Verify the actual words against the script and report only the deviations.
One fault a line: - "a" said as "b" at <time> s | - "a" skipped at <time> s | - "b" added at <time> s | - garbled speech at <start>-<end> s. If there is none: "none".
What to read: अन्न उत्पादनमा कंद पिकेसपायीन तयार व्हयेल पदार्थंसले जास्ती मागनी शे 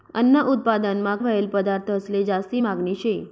- "कंद पिकेसपायीन तयार" skipped at 1.1 s